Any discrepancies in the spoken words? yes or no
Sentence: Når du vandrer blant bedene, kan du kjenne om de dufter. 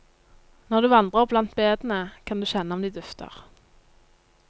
no